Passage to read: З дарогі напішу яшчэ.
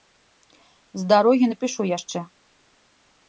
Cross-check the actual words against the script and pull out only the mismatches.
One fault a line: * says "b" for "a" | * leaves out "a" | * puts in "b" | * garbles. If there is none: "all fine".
all fine